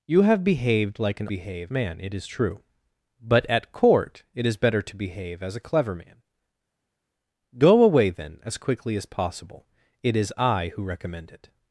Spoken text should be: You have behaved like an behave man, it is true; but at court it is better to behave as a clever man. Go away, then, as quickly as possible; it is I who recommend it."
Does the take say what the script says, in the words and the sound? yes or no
yes